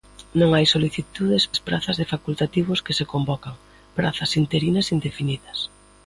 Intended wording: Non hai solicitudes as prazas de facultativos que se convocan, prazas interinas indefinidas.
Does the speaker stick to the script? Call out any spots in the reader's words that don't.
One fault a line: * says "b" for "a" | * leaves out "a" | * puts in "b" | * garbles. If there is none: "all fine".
all fine